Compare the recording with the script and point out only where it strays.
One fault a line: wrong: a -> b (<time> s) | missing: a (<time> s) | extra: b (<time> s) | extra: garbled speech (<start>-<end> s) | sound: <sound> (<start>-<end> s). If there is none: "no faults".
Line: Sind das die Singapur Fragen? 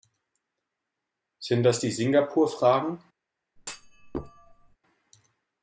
sound: thud (3.6-4.8 s)